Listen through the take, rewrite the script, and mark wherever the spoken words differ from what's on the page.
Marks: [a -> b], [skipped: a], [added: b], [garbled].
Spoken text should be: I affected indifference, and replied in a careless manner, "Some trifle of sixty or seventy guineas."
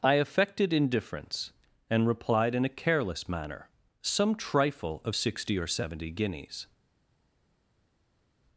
I affected indifference, and replied in a careless manner, "Some trifle of sixty or seventy guineas."